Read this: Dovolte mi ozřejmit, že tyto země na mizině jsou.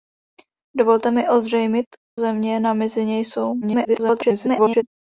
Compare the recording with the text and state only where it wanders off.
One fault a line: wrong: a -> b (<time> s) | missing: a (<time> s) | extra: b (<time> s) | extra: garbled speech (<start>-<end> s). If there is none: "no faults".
missing: že tyto (1.9 s)
extra: garbled speech (3.6-4.8 s)